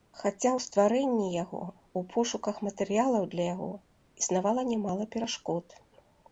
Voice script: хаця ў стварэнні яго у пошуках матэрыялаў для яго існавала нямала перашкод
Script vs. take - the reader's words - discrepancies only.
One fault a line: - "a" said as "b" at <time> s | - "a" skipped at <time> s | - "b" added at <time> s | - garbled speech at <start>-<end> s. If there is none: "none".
none